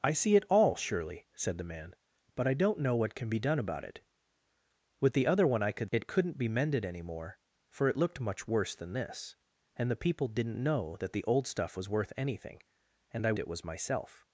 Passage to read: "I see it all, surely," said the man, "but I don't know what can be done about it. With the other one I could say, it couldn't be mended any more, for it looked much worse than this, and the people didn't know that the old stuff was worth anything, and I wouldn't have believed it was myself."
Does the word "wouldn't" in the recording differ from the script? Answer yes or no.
yes